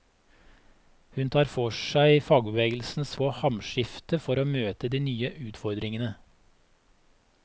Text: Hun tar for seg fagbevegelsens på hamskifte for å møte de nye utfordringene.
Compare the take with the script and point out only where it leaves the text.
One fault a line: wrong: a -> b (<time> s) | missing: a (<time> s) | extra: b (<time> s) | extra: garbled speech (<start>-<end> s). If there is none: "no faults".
no faults